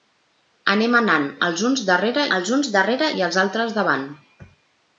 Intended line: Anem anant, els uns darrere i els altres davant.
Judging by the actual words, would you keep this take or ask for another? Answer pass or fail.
fail